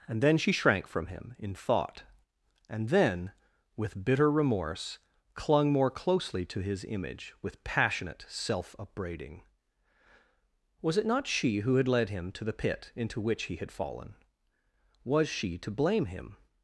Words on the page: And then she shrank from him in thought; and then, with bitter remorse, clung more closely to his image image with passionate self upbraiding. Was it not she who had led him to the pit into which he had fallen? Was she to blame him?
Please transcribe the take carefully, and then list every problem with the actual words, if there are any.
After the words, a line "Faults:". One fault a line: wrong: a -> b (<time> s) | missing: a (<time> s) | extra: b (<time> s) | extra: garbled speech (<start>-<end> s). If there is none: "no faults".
And then she shrank from him in thought; and then, with bitter remorse, clung more closely to his image with passionate self upbraiding. Was it not she who had led him to the pit into which he had fallen? Was she to blame him?
Faults:
missing: image (7.3 s)